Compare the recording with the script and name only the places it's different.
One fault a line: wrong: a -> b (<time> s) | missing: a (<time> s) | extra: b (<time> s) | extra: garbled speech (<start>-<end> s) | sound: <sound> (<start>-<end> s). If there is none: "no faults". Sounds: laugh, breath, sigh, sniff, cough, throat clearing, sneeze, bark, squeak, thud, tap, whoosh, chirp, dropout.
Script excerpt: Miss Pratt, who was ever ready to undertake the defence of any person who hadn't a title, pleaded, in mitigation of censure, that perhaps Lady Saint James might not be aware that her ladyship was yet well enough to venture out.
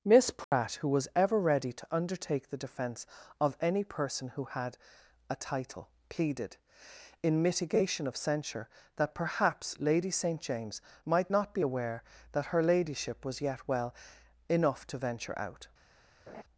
sound: dropout (0.4-0.5 s)
wrong: hadn't -> had (4.5 s)
sound: laugh (16.3-16.4 s)